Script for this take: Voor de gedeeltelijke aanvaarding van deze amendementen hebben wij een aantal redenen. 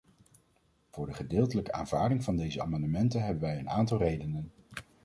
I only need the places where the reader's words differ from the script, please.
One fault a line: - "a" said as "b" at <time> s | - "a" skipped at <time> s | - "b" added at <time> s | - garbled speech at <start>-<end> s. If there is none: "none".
none